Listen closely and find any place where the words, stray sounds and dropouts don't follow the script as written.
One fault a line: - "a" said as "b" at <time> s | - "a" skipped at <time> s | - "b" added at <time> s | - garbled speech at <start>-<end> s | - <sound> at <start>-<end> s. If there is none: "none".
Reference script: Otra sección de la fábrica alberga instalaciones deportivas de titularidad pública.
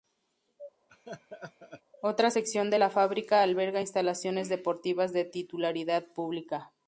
- laugh at 0.9-1.8 s